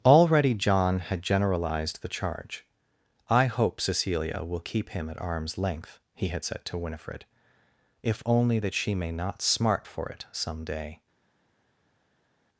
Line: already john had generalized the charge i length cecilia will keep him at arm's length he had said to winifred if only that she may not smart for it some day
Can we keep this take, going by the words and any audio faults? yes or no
no